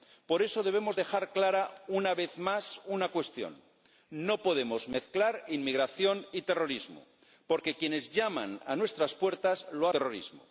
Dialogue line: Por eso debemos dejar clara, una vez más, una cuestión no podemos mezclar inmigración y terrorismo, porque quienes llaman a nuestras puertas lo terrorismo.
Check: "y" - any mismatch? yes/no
no